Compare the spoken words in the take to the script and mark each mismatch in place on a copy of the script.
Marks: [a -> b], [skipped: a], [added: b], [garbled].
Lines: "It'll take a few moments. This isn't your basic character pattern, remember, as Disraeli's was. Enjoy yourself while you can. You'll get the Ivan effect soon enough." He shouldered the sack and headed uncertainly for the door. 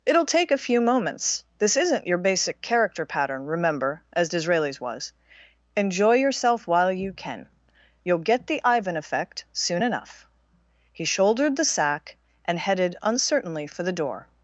"It'll take a few moments. This isn't your basic character pattern, remember, as Disraeli's was. Enjoy yourself while you can. You'll get the Ivan effect soon enough." He shouldered the sack and headed uncertainly for the door.